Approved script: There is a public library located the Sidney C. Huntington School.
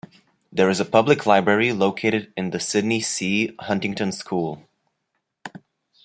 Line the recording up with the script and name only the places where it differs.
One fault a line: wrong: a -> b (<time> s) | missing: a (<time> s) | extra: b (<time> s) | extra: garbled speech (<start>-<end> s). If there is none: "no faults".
extra: in (2.4 s)